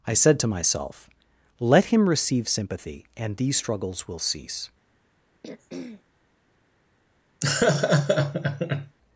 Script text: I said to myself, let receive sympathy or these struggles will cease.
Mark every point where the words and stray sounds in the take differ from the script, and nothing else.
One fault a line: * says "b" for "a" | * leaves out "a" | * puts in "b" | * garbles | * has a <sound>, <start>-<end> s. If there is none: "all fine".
* puts in "him"
* says "and" for "or"
* has a throat clearing, 5.4-6.0 s
* has a laugh, 7.4-9.0 s